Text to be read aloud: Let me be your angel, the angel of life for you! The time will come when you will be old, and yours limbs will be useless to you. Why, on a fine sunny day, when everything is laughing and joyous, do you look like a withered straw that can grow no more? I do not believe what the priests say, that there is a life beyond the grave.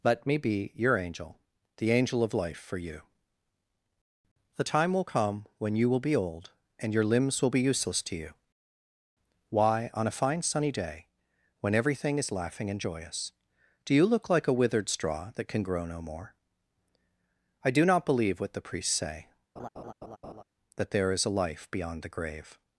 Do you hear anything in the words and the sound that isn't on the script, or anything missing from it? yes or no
yes